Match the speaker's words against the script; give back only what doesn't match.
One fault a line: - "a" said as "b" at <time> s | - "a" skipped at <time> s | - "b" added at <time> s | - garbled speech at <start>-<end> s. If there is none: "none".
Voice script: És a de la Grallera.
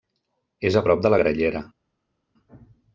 - "prop" added at 0.8 s